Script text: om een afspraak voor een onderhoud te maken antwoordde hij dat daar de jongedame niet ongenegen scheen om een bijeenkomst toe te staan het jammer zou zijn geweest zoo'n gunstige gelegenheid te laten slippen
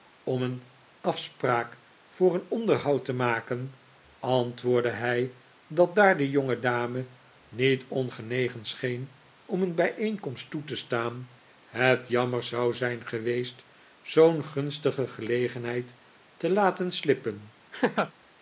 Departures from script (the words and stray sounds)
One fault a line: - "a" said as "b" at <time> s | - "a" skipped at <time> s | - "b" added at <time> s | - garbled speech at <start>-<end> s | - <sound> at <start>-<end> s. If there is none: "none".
- laugh at 17.7-18.1 s